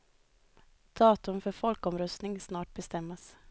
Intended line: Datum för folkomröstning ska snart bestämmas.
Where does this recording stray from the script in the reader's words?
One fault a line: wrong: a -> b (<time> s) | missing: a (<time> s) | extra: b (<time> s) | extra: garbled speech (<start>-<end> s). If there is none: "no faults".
missing: ska (2.4 s)